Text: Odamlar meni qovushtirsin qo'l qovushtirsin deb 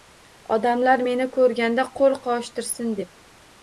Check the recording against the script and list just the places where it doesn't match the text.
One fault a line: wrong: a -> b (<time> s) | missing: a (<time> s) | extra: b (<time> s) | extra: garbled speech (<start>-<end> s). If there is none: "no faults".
wrong: qovushtirsin -> ko'rganda (1.4 s)